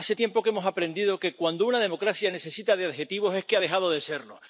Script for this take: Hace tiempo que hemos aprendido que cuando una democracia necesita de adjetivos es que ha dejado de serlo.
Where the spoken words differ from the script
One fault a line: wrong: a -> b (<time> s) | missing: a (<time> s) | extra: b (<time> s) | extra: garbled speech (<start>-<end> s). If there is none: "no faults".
no faults